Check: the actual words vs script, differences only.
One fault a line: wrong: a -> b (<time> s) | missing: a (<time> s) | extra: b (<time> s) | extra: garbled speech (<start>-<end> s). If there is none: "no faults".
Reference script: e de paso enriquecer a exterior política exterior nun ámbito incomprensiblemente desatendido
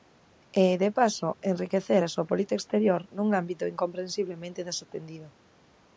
wrong: exterior -> súa (2.1 s)